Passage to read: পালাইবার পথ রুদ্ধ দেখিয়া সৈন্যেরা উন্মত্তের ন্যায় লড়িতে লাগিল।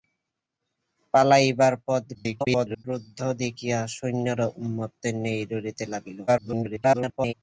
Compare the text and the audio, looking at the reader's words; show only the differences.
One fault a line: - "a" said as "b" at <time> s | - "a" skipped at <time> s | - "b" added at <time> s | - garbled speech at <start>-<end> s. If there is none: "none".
- garbled speech at 2.1-2.8 s
- garbled speech at 6.3-7.3 s